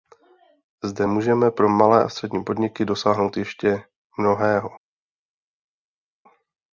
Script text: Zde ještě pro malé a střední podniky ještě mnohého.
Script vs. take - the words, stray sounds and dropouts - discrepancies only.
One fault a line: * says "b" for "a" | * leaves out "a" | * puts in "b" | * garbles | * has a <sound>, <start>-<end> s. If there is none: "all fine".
* says "můžeme" for "ještě"
* puts in "dosáhnout"